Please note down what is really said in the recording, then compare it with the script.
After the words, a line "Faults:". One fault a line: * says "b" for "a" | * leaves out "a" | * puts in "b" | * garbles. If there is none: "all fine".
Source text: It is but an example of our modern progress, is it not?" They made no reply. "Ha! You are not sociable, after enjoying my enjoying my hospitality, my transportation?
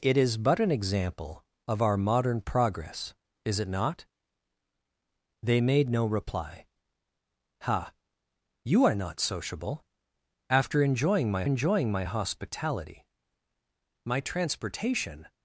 It is but an example of our modern progress, is it not?" They made no reply. "Ha! You are not sociable, after enjoying my enjoying my hospitality, my transportation?
Faults:
all fine